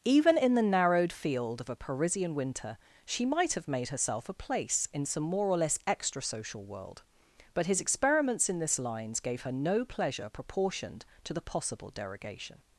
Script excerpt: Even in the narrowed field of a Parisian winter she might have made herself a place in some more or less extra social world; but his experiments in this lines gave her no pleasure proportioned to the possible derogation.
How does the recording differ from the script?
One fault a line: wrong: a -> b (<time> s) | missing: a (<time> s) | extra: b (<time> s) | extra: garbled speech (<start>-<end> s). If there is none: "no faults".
no faults